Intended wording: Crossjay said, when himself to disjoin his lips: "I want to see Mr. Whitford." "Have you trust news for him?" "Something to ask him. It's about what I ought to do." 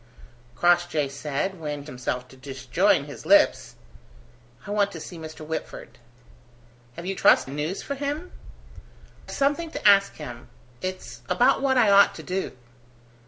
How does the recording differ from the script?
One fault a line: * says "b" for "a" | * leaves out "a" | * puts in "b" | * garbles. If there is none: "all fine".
all fine